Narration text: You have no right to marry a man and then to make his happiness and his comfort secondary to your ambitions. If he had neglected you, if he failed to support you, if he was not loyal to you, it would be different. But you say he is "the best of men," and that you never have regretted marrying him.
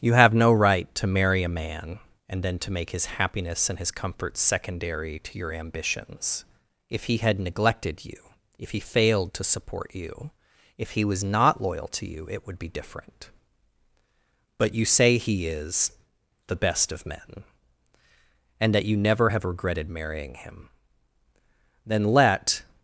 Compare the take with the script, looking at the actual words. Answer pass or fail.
fail